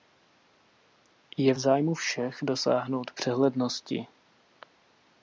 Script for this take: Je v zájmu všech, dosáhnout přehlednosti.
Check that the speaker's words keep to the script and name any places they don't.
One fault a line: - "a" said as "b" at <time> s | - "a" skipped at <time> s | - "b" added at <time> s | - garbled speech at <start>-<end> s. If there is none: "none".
none